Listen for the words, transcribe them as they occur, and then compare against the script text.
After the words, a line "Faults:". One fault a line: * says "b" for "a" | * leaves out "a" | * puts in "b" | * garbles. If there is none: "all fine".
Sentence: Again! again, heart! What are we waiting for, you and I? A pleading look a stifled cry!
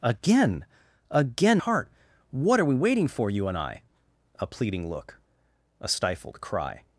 Again! again, heart! What are we waiting for, you and I? A pleading look a stifled cry!
Faults:
all fine